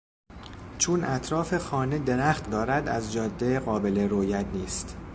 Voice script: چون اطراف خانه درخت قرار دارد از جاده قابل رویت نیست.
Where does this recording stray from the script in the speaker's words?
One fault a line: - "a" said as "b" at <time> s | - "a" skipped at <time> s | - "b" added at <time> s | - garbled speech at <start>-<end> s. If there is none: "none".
- "قرار" skipped at 2.5 s